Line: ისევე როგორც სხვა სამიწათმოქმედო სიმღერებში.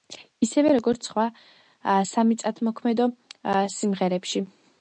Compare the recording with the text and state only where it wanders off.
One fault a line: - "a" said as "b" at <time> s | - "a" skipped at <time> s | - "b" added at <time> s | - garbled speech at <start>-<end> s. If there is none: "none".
none